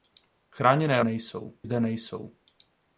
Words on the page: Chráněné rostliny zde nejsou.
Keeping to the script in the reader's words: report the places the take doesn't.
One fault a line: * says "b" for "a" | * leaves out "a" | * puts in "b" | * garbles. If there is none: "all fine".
* says "nejsou" for "rostliny"